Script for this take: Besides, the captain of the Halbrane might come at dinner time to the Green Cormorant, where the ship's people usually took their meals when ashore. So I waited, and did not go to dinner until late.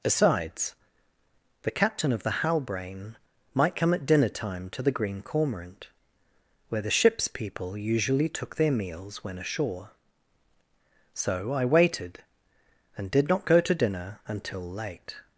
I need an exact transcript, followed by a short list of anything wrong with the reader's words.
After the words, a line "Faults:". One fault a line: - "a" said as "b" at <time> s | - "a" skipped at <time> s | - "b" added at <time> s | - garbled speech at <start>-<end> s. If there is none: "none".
Besides, the captain of the Halbrane might come at dinner time to the Green Cormorant, where the ship's people usually took their meals when ashore. So I waited, and did not go to dinner until late.
Faults:
none